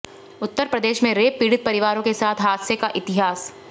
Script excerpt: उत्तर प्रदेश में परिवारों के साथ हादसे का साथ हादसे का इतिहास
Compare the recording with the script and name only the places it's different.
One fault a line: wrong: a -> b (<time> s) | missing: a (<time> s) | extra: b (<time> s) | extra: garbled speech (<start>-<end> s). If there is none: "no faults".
extra: रेप पीड़ित (1.1 s)
missing: साथ हादसे का (2.9 s)